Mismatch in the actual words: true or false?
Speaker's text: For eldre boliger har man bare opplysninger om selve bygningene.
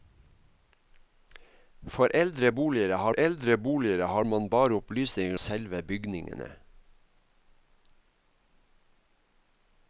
true